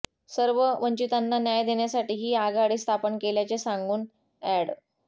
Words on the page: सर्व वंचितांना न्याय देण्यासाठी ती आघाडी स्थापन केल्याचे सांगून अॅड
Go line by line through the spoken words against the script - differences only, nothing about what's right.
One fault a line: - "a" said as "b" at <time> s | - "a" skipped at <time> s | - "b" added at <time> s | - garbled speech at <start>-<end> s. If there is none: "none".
- "ती" said as "ही" at 2.2 s